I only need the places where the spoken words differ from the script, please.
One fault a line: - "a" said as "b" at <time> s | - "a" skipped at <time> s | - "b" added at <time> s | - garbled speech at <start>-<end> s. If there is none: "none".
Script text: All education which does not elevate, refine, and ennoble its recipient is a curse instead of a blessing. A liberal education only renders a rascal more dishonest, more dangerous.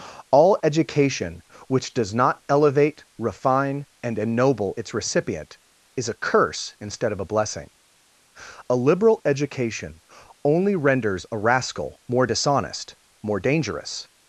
none